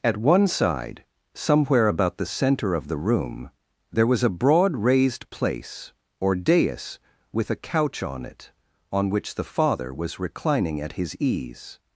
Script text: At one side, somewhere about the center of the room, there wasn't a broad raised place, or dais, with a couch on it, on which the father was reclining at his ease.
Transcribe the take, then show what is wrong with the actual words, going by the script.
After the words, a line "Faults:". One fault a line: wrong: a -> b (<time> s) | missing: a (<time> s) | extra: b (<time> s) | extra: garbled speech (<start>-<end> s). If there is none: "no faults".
At one side, somewhere about the center of the room, there was a broad raised place, or dais, with a couch on it, on which the father was reclining at his ease.
Faults:
wrong: wasn't -> was (4.1 s)